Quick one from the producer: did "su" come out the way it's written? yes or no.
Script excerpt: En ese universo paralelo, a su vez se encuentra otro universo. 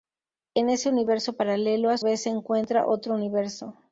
no